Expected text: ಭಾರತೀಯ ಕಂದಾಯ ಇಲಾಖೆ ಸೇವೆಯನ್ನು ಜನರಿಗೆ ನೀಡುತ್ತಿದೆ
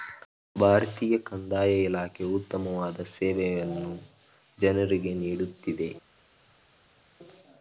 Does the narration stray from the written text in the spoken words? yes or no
yes